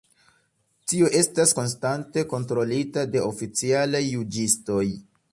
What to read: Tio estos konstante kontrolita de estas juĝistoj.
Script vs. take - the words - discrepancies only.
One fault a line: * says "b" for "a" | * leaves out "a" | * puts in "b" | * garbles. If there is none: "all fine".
* says "estas" for "estos"
* says "oficialaj" for "estas"